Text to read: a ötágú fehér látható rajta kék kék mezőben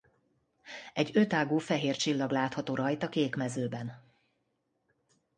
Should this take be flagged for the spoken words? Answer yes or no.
yes